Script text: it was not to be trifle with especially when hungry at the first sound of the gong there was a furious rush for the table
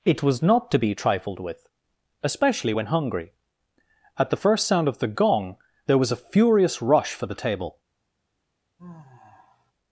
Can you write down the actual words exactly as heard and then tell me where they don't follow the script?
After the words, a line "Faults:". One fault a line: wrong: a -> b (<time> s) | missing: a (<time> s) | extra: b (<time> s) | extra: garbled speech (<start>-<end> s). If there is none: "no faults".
it was not to be trifled with especially when hungry at the first sound of the gong there was a furious rush for the table
Faults:
wrong: trifle -> trifled (1.0 s)